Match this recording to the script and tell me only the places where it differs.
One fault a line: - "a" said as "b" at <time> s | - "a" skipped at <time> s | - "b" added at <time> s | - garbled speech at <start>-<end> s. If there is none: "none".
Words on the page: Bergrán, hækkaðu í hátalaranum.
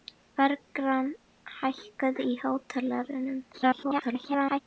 - garbled speech at 3.5-4.6 s